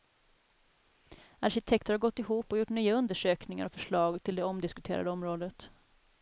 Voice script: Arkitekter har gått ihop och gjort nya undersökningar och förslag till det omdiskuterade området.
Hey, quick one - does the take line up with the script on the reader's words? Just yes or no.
yes